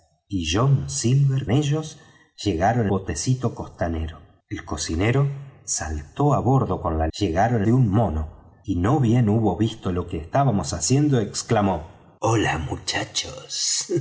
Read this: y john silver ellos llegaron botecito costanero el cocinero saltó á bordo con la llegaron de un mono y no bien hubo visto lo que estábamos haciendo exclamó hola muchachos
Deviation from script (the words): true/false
false